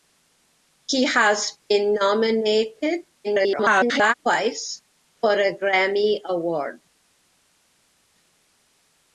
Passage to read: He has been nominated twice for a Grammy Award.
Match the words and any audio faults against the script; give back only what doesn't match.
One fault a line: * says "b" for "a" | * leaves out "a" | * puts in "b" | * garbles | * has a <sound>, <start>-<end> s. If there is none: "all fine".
* garbles